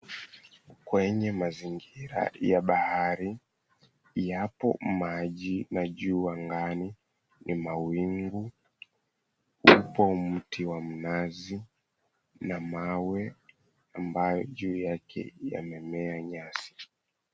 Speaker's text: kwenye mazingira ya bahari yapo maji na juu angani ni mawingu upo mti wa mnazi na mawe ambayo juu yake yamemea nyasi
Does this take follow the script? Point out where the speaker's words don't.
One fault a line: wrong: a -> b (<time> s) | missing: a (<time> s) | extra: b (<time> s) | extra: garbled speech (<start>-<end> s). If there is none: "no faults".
no faults